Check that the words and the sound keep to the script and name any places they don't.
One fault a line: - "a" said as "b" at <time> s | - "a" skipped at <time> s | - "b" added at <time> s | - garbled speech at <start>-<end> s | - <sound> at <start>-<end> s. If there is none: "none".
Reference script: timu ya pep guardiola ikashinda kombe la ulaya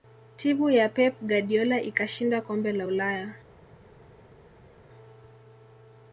none